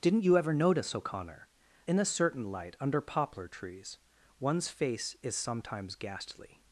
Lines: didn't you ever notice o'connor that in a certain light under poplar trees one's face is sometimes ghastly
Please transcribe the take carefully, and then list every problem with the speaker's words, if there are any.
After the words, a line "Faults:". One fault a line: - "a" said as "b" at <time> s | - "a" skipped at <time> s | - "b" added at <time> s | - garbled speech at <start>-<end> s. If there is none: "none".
didn't you ever notice o'connor in a certain light under poplar trees one's face is sometimes ghastly
Faults:
- "that" skipped at 1.5 s